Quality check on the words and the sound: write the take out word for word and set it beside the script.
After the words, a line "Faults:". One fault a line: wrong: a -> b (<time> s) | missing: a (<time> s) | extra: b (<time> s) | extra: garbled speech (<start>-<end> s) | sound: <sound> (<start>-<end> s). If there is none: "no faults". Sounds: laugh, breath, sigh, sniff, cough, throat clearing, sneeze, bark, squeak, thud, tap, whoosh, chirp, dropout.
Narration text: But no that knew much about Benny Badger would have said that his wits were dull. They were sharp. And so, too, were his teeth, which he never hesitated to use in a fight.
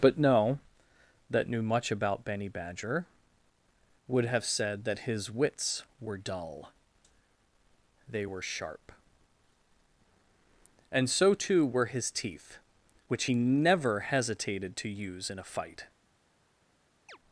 But no that knew much about Benny Badger would have said that his wits were dull. They were sharp. And so, too, were his teeth, which he never hesitated to use in a fight.
Faults:
sound: chirp (17.1-17.2 s)